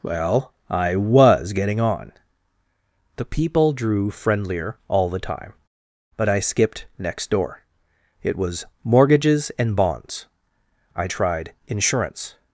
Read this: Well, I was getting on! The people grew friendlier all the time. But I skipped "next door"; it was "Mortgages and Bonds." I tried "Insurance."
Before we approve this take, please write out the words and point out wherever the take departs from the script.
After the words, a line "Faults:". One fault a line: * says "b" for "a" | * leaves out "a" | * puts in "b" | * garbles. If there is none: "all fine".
Well, I was getting on! The people drew friendlier all the time. But I skipped "next door"; it was "Mortgages and Bonds." I tried "Insurance."
Faults:
* says "drew" for "grew"